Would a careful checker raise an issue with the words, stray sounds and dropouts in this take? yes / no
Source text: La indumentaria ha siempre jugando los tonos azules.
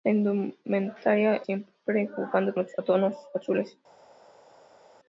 no